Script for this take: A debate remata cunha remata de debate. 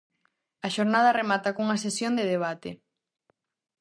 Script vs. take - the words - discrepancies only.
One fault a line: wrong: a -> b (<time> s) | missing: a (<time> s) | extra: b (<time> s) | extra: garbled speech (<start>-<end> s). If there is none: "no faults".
wrong: debate -> xornada (0.8 s)
wrong: remata -> sesión (1.8 s)